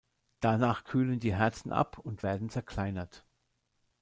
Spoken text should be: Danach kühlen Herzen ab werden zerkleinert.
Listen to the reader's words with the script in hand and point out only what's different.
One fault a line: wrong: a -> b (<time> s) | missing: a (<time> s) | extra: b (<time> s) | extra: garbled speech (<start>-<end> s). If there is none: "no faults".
extra: die (1.2 s)
extra: und (2.0 s)